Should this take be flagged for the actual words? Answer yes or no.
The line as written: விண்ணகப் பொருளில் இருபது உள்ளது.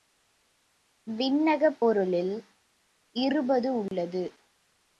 no